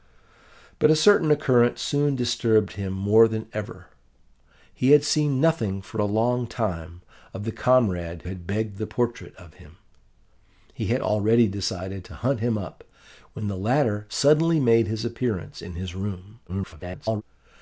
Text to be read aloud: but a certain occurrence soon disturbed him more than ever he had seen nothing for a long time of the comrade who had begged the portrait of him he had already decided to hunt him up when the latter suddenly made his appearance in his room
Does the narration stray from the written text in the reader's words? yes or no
yes